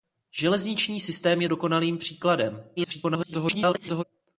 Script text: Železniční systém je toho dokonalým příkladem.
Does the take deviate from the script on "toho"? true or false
true